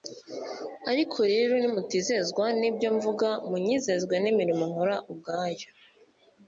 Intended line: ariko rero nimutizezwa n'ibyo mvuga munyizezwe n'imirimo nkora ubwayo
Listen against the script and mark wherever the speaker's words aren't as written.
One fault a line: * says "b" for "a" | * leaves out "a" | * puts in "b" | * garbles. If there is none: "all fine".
all fine